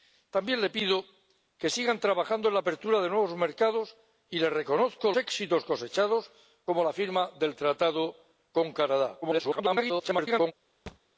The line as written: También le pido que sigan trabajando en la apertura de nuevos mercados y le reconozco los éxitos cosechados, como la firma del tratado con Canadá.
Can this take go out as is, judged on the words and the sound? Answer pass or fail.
fail